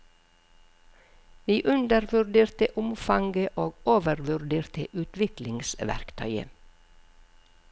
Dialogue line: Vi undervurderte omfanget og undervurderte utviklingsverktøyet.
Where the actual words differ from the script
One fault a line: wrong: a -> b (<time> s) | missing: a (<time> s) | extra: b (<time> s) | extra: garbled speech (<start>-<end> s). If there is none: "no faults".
wrong: undervurderte -> overvurderte (3.9 s)